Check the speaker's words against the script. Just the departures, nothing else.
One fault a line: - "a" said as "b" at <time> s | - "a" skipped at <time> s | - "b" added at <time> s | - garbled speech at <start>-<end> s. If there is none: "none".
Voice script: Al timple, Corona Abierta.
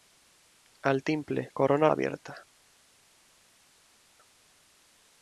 none